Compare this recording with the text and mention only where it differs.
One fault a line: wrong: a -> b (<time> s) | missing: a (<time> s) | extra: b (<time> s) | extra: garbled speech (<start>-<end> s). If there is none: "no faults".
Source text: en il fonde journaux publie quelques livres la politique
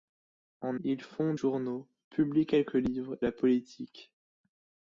no faults